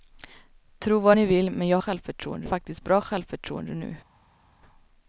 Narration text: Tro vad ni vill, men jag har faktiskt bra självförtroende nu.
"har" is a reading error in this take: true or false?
true